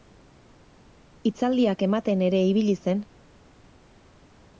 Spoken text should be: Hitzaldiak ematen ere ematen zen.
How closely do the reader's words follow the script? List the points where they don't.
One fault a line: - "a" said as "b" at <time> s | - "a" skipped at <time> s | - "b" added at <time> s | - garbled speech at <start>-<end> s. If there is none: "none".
- "ematen" said as "ibili" at 2.5 s